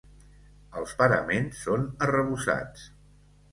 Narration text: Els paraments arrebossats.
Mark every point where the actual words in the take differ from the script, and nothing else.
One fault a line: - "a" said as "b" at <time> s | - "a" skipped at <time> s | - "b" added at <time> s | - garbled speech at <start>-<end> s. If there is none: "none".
- "són" added at 1.7 s